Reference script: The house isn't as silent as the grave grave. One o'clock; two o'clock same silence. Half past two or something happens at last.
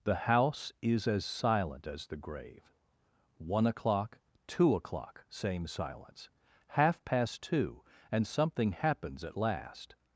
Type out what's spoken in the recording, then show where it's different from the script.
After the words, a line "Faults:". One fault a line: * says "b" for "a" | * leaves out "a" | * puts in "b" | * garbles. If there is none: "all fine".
The house is as silent as the grave. One o'clock; two o'clock same silence. Half past two and something happens at last.
Faults:
* says "is" for "isn't"
* leaves out "grave"
* says "and" for "or"